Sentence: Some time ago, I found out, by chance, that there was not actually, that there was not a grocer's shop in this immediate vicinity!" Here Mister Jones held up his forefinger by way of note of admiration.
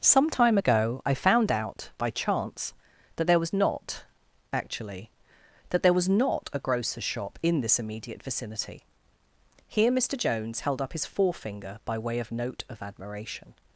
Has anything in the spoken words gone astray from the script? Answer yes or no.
no